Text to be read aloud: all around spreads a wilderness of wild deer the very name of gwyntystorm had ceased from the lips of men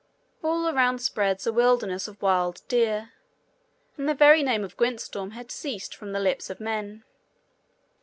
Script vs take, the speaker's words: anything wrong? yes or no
yes